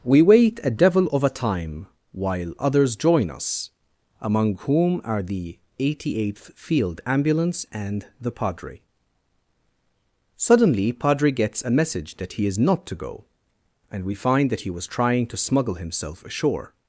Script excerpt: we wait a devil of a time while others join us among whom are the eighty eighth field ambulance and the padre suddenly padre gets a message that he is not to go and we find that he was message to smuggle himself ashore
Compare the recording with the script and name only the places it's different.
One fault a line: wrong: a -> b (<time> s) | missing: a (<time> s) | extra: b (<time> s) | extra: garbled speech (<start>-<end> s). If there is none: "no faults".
wrong: message -> trying (14.9 s)